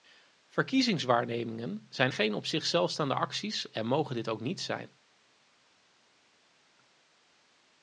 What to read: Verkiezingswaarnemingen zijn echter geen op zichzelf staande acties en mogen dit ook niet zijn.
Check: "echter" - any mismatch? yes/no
yes